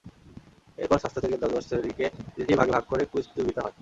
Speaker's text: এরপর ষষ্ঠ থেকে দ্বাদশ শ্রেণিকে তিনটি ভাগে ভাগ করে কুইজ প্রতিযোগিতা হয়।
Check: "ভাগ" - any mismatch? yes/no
no